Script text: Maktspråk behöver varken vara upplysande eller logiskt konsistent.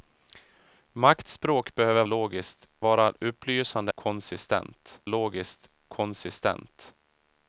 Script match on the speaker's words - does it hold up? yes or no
no